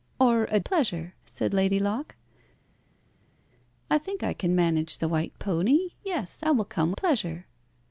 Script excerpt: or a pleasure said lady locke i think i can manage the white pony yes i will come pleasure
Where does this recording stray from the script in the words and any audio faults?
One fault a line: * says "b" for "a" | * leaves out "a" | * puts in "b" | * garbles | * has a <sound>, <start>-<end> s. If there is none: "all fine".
all fine